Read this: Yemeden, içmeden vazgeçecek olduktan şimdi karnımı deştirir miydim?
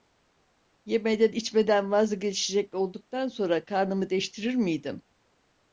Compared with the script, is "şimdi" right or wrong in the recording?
wrong